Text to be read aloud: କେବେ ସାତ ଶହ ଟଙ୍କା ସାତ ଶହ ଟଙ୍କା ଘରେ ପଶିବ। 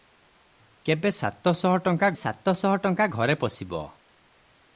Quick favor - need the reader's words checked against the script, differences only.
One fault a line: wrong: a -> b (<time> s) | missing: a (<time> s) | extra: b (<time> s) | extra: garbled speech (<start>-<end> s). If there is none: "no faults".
no faults